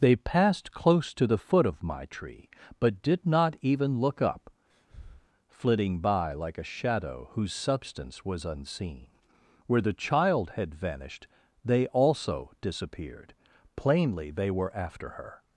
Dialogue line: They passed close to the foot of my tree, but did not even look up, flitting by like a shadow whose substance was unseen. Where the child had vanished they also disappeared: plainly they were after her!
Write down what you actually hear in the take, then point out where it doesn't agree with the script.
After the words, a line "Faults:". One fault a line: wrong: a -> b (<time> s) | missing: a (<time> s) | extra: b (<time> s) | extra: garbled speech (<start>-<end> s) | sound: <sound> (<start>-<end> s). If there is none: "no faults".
They passed close to the foot of my tree, but did not even look up, flitting by like a shadow whose substance was unseen. Where the child had vanished they also disappeared: plainly they were after her!
Faults:
sound: breath (4.7-5.3 s)